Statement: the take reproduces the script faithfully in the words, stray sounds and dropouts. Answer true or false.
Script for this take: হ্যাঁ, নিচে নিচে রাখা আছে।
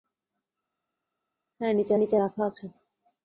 true